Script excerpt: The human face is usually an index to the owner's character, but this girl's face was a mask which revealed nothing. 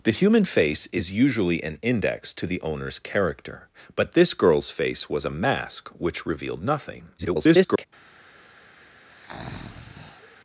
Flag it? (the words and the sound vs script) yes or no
yes